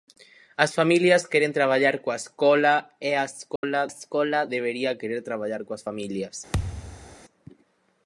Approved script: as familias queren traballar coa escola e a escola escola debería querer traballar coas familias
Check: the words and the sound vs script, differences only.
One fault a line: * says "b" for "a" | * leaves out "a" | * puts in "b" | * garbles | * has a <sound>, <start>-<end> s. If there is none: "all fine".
* has a dropout, 3.6-3.6 s
* has a thud, 6.5-7.2 s